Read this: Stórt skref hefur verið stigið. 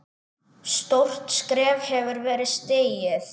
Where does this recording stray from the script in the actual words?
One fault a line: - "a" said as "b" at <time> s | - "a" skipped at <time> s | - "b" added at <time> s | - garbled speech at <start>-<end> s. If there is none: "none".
none